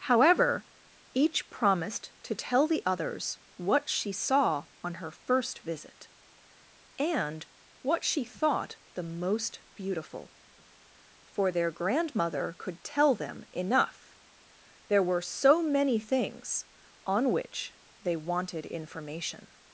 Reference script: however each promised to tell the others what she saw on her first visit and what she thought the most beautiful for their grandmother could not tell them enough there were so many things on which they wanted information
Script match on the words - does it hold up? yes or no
no